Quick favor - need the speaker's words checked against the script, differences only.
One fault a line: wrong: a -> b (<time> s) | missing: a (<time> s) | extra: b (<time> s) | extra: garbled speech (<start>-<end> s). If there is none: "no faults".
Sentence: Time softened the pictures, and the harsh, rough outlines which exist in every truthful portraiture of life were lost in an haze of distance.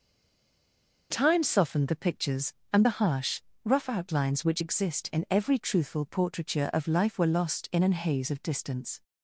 no faults